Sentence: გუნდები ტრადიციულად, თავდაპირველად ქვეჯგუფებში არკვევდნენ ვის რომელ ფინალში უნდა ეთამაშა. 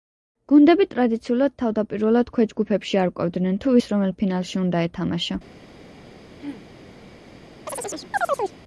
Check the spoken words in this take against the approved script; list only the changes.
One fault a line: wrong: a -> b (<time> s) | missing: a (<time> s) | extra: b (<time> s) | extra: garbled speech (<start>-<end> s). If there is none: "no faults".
extra: თუ (3.7 s)